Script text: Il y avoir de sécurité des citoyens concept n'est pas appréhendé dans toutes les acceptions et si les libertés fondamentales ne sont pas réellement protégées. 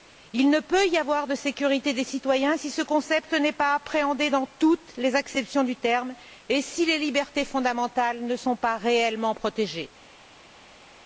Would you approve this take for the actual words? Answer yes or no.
no